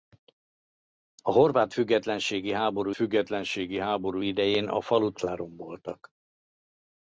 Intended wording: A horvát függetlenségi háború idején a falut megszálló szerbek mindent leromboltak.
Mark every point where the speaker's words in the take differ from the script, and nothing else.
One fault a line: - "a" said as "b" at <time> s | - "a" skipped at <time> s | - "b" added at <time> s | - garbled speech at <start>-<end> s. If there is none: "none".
- "függetlenségi háború" added at 3.0 s
- "megszálló szerbek mindent" skipped at 5.2 s